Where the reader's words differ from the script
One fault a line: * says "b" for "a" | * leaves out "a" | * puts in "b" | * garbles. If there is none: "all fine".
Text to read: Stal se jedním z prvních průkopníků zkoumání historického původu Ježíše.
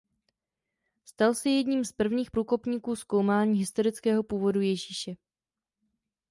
all fine